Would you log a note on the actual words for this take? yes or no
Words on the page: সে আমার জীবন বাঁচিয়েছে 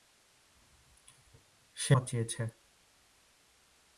yes